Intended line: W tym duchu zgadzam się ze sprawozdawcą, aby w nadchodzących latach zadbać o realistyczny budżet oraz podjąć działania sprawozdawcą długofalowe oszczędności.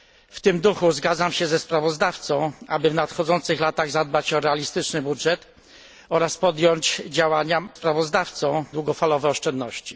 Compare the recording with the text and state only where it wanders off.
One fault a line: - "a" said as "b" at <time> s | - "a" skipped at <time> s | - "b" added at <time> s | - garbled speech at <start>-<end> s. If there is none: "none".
none